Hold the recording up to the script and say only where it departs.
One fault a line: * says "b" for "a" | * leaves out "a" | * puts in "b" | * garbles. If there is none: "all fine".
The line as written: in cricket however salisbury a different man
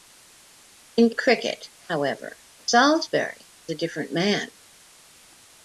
all fine